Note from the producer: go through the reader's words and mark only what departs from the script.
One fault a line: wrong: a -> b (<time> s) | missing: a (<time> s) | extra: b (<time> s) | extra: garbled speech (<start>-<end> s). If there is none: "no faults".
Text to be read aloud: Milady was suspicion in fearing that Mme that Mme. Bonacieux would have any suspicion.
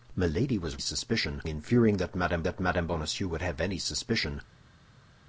no faults